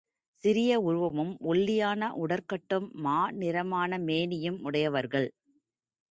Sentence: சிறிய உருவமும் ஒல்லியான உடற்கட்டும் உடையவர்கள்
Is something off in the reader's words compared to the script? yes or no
yes